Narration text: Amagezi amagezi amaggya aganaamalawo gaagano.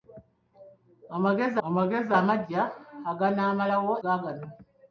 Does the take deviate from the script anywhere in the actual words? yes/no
no